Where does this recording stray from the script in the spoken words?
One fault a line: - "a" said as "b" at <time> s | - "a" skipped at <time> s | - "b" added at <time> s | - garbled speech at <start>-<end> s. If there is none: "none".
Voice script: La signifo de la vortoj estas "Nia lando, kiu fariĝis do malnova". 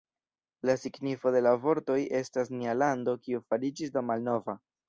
none